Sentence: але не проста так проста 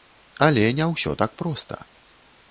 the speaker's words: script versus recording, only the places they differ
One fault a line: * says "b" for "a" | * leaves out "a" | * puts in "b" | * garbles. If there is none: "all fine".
* says "ўсё" for "проста"